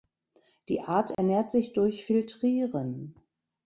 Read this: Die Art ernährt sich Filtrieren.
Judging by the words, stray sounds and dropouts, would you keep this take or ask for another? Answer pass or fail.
fail